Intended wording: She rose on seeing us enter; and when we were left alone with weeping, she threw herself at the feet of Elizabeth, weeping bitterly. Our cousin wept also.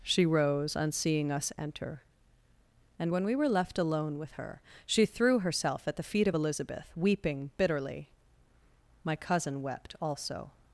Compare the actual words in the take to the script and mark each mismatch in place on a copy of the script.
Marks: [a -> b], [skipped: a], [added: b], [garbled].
She rose on seeing us enter; and when we were left alone with [weeping, -> her] she threw herself at the feet of Elizabeth, weeping bitterly. [Our -> My] cousin wept also.